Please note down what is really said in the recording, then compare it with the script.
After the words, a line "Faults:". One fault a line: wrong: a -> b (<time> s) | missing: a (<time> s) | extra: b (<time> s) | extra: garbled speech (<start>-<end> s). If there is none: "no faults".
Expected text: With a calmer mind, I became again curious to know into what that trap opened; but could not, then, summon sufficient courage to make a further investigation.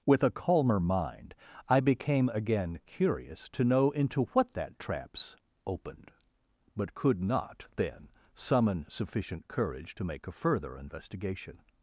With a calmer mind, I became again curious to know into what that traps opened; but could not, then, summon sufficient courage to make a further investigation.
Faults:
wrong: trap -> traps (4.8 s)